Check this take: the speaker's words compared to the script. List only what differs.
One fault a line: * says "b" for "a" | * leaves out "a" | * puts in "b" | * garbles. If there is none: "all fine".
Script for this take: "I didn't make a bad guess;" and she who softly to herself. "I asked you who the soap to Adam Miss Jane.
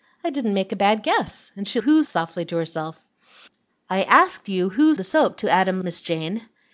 all fine